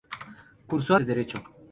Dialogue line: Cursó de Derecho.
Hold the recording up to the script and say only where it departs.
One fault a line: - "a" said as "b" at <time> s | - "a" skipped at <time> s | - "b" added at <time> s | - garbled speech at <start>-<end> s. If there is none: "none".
none